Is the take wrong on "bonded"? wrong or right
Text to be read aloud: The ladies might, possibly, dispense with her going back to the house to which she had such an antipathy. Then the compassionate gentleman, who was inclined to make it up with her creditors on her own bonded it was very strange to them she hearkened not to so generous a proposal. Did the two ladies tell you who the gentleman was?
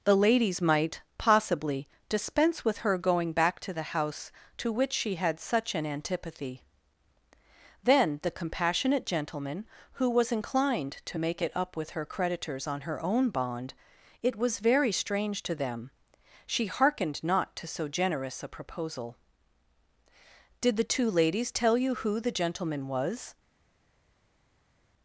wrong